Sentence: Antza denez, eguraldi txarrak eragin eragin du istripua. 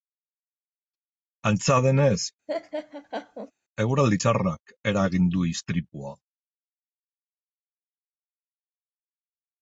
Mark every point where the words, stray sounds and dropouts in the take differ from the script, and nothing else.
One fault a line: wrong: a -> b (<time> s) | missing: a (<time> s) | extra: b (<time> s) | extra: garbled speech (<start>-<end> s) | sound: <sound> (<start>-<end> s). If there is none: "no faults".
sound: laugh (2.5-3.5 s)
missing: eragin (5.3 s)